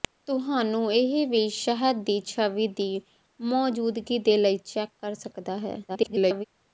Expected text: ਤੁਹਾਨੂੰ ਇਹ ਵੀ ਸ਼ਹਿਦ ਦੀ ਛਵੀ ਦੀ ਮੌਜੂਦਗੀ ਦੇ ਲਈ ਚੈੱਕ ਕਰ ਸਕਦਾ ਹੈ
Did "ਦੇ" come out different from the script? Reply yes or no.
no